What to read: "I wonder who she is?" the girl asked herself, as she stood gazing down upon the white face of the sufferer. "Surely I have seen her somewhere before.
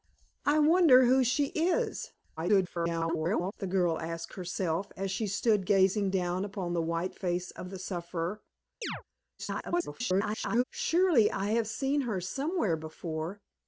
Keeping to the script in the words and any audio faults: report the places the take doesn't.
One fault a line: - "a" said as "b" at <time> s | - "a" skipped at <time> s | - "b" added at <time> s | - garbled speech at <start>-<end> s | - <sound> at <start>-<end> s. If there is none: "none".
- garbled speech at 2.4-3.5 s
- chirp at 8.8-9.0 s
- garbled speech at 9.4-10.6 s